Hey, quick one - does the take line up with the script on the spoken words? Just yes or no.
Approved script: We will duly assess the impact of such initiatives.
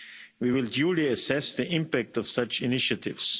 yes